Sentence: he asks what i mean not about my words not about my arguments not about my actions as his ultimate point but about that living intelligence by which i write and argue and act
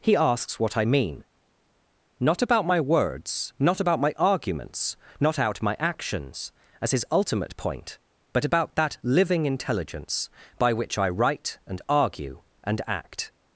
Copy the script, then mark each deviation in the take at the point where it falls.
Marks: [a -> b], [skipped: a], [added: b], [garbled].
he asks what i mean not about my words not about my arguments not [about -> out] my actions as his ultimate point but about that living intelligence by which i write and argue and act